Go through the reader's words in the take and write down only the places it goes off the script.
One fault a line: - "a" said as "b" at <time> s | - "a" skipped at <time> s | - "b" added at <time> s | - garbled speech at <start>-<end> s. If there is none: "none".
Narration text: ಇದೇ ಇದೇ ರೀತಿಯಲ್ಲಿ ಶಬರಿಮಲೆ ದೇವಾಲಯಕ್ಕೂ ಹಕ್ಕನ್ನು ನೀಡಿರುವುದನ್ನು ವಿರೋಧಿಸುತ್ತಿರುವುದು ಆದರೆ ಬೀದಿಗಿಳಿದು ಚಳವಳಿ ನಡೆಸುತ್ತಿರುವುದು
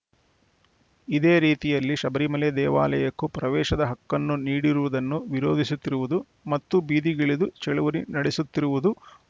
- "ಇದೇ" skipped at 1.3 s
- "ಪ್ರವೇಶದ" added at 3.4 s
- "ಆದರೆ" said as "ಮತ್ತು" at 6.5 s